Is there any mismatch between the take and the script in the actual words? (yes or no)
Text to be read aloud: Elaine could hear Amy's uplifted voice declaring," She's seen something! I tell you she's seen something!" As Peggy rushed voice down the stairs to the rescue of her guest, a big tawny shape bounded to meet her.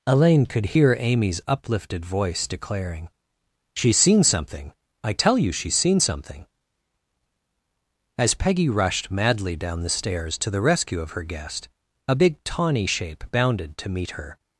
yes